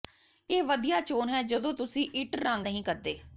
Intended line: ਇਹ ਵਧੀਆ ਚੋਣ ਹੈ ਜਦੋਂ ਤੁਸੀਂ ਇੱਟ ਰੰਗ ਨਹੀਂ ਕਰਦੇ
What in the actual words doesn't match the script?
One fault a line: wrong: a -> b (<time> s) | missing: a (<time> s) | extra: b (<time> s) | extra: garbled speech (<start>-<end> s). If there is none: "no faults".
no faults